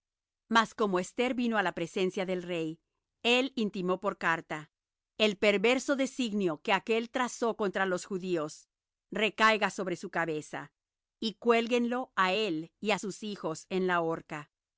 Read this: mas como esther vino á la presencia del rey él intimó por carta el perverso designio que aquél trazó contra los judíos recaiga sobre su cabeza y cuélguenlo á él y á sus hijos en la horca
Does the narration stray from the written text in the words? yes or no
no